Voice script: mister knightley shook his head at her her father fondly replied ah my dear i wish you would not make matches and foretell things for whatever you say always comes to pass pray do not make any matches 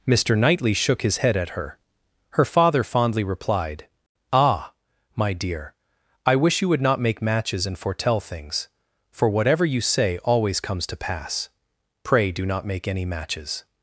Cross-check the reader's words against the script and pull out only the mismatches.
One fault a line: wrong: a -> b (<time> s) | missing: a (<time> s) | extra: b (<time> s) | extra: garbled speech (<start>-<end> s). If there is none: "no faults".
no faults